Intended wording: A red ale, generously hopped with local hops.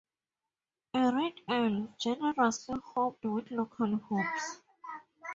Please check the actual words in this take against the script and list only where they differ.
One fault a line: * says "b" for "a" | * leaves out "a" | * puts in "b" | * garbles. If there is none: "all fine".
all fine